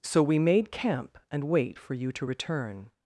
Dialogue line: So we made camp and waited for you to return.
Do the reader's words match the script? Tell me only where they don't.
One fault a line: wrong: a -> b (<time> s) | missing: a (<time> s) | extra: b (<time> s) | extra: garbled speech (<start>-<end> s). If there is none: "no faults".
wrong: waited -> wait (1.4 s)